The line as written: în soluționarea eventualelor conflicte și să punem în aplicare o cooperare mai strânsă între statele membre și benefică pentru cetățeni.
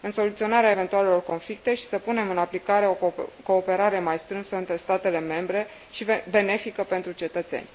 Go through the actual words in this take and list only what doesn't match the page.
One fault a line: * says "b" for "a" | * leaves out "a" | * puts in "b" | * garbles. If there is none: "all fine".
all fine